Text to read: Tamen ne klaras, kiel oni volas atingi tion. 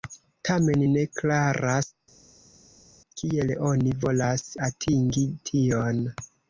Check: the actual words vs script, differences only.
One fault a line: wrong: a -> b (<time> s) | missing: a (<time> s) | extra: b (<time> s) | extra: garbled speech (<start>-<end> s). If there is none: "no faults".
no faults